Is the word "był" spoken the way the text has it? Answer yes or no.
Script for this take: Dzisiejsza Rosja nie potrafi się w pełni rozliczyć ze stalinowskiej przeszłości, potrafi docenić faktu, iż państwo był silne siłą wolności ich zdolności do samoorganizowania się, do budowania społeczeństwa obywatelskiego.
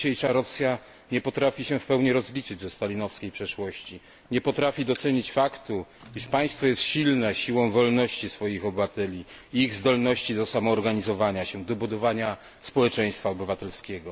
no